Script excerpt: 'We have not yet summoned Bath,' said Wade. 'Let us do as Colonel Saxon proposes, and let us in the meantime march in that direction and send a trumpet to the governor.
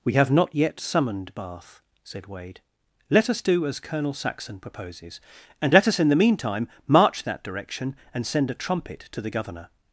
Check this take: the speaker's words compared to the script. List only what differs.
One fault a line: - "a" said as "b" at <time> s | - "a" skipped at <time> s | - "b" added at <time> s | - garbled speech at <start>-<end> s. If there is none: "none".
- "in" skipped at 7.2 s